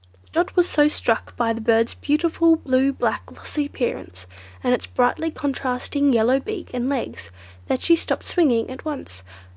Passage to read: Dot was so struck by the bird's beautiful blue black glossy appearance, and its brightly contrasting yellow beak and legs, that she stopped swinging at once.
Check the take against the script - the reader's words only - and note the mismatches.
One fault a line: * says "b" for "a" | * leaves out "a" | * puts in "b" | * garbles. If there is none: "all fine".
all fine